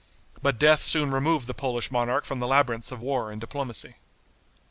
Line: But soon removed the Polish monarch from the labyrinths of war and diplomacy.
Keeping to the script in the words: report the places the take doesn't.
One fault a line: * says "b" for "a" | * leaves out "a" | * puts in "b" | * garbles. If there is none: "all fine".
* puts in "death"